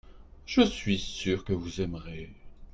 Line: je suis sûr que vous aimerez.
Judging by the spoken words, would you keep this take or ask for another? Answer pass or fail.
pass